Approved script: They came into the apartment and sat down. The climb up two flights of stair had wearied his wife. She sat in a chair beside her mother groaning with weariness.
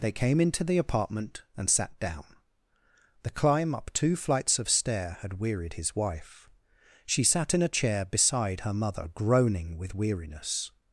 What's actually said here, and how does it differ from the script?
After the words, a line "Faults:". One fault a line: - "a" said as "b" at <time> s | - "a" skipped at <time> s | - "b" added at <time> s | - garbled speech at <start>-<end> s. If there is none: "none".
They came into the apartment and sat down. The climb up two flights of stair had wearied his wife. She sat in a chair beside her mother groaning with weariness.
Faults:
none